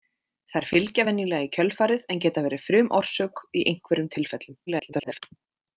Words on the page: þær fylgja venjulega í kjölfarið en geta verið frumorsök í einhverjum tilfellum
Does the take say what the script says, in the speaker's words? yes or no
no